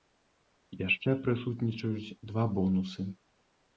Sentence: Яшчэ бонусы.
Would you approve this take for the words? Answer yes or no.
no